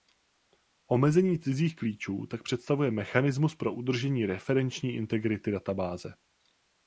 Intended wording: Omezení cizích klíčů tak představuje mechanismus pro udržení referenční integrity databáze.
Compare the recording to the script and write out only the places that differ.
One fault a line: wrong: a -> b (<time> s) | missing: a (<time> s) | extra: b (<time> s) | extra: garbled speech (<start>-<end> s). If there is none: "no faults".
no faults